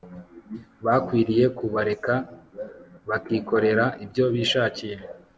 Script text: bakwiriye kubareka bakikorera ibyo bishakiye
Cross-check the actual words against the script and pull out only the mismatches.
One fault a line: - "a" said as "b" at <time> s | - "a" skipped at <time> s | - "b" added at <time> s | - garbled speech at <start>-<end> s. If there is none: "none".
none